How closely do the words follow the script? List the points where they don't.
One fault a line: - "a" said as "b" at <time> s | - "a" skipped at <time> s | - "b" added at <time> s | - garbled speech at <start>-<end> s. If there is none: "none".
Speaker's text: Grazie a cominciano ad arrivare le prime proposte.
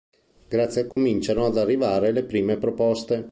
none